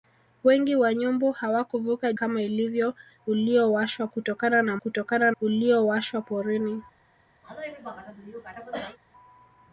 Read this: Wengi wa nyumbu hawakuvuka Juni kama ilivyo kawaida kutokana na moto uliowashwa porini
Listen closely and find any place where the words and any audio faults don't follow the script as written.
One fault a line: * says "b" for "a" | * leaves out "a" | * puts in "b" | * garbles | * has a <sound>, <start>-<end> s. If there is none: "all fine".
* leaves out "Juni"
* says "uliowashwa" for "kawaida"
* says "kutokana" for "moto"
* has a cough, 7.4-9.0 s